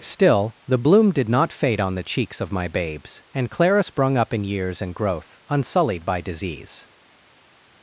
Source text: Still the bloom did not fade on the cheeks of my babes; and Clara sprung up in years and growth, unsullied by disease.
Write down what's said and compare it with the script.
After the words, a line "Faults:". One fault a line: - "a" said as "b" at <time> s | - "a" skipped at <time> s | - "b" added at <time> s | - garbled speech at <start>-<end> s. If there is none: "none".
Still the bloom did not fade on the cheeks of my babes; and Clara sprung up in years and growth, unsullied by disease.
Faults:
none